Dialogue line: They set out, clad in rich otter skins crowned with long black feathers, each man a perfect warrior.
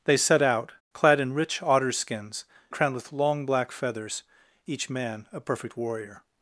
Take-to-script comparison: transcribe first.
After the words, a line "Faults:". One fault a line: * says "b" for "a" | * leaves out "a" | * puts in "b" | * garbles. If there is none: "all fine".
They set out, clad in rich otter skins crowned with long black feathers, each man a perfect warrior.
Faults:
all fine